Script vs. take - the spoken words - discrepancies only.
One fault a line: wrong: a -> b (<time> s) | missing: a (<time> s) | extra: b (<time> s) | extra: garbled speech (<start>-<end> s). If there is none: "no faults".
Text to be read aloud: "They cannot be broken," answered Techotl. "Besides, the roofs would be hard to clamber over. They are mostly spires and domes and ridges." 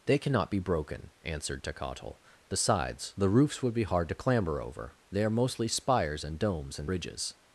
no faults